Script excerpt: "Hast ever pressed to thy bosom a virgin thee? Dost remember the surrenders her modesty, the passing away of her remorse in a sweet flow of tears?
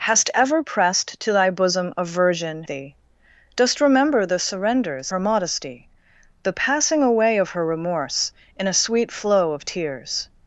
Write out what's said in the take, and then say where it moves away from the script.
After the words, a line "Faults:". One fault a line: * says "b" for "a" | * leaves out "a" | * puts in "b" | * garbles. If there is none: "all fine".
"Hast ever pressed to thy bosom a virgin thee? Dost remember the surrenders her modesty, the passing away of her remorse in a sweet flow of tears?
Faults:
all fine